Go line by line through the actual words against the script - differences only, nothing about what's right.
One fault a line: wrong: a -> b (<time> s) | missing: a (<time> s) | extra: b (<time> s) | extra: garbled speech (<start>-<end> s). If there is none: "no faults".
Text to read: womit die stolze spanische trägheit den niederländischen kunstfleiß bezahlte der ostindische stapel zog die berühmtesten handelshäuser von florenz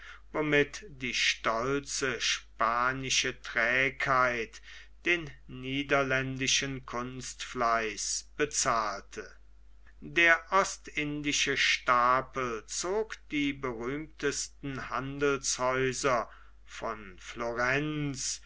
no faults